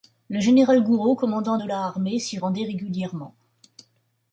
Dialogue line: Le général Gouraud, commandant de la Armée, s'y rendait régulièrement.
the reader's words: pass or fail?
pass